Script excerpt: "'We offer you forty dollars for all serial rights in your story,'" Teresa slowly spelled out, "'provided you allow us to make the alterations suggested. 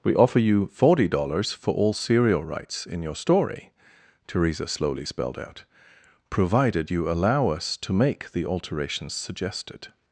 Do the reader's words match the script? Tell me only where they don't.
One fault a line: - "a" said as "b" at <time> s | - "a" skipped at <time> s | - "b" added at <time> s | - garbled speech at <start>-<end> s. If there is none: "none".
none